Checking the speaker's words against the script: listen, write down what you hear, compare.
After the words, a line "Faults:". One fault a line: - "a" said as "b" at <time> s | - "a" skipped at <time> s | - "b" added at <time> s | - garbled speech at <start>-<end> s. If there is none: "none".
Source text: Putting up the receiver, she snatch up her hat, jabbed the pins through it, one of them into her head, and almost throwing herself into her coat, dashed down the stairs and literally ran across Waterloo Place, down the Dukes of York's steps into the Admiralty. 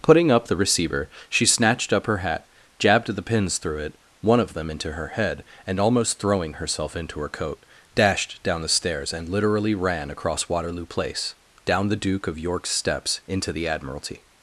Putting up the receiver, she snatched up her hat, jabbed the pins through it, one of them into her head, and almost throwing herself into her coat, dashed down the stairs and literally ran across Waterloo Place, down the Duke of York's steps into the Admiralty.
Faults:
- "snatch" said as "snatched" at 1.4 s
- "Dukes" said as "Duke" at 12.0 s